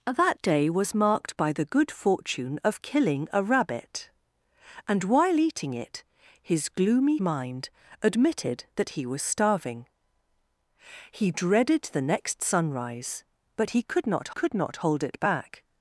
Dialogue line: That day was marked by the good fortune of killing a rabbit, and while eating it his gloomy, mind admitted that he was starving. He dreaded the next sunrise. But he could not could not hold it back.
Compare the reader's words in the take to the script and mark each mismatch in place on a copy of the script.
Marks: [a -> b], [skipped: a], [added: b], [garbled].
That day was marked by the good fortune of killing a rabbit, and while eating it his gloomy, mind admitted that he was starving. He dreaded the next sunrise. But he could not could not hold it back.